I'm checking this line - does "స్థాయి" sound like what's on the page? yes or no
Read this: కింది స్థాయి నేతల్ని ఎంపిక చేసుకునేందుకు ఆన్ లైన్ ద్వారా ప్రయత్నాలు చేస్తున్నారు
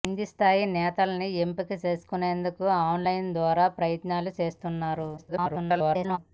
yes